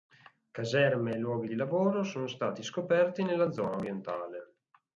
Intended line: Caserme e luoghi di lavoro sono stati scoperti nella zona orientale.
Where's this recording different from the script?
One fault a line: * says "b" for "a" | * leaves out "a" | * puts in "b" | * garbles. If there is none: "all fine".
all fine